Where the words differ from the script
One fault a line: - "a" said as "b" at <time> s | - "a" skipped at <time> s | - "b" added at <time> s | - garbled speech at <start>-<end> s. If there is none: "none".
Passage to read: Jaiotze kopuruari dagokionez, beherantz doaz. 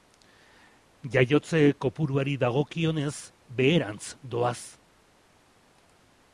none